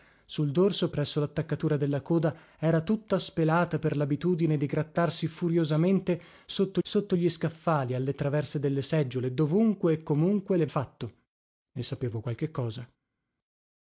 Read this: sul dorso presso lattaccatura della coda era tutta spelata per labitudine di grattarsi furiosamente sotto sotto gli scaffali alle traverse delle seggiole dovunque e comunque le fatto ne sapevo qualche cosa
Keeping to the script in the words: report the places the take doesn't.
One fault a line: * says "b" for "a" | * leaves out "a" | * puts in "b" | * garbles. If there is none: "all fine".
all fine